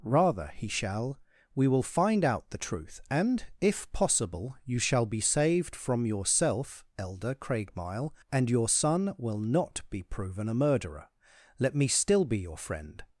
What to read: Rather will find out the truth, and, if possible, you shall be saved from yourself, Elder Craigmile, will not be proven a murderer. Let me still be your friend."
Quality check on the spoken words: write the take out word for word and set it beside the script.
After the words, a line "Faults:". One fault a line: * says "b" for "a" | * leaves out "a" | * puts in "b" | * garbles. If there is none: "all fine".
Rather he shall" "We will find out the truth, and, if possible, you shall be saved from yourself, Elder Craigmile, and your son will not be proven a murderer. Let me still be your friend."
Faults:
* puts in "he shall We"
* puts in "and your son"